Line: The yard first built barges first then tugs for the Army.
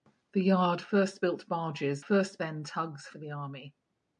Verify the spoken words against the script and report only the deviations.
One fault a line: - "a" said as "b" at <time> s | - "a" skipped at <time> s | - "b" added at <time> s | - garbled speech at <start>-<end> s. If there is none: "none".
none